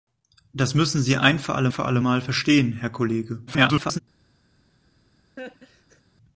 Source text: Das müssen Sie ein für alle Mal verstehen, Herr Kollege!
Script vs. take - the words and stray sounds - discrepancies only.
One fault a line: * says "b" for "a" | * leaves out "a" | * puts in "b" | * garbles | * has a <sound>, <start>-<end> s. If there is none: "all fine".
* puts in "für alle"
* garbles
* has a laugh, 5.4-6.0 s